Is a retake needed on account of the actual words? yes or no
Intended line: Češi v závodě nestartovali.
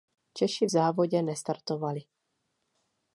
no